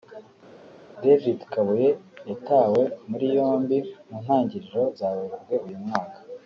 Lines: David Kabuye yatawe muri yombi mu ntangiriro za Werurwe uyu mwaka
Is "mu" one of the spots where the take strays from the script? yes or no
no